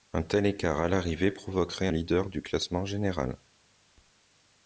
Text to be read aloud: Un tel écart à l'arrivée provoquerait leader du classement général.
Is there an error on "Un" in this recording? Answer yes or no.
no